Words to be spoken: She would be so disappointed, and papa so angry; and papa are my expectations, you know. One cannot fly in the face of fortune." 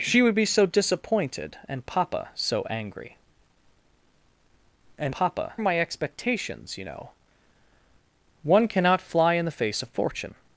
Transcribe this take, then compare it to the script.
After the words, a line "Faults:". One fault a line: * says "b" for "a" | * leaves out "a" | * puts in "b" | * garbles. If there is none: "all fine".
She would be so disappointed, and papa so angry; and papa are my expectations, you know. One cannot fly in the face of fortune."
Faults:
all fine